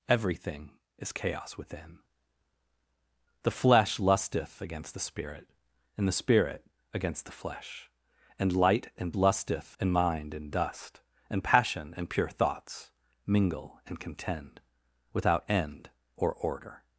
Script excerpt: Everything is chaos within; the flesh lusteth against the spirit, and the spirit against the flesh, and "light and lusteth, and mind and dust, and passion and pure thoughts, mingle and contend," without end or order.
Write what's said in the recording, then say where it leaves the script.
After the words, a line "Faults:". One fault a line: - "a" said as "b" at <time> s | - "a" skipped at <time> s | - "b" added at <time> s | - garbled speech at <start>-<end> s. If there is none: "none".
Everything is chaos within; the flesh lusteth against the spirit, and the spirit against the flesh, and "light and lusteth, and mind and dust, and passion and pure thoughts, mingle and contend," without end or order.
Faults:
none